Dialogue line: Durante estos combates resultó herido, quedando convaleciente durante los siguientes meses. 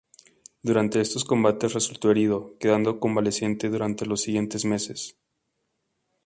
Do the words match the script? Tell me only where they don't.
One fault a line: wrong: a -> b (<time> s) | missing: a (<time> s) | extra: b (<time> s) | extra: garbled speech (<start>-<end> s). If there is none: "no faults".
no faults